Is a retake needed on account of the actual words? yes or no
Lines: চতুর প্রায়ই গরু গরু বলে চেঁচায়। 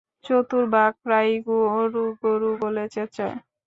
yes